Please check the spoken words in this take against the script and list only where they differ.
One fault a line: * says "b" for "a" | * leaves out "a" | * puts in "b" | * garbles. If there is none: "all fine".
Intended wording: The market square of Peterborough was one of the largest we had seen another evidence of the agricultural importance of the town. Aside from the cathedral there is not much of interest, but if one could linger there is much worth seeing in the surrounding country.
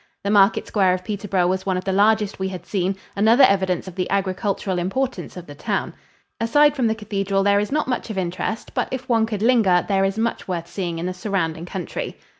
all fine